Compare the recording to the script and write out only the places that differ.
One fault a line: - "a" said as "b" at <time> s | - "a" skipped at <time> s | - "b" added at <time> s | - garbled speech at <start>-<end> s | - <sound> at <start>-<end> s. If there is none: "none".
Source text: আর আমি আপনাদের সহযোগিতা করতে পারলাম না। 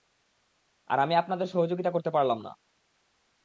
none